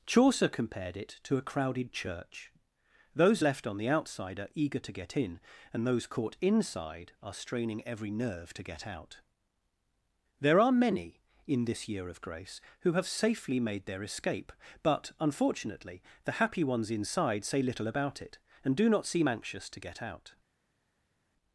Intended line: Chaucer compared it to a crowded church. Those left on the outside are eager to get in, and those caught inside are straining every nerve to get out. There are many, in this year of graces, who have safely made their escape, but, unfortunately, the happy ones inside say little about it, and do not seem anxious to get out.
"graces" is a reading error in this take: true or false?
true